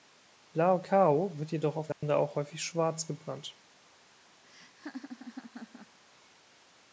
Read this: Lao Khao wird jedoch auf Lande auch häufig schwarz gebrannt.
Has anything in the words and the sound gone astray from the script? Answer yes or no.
yes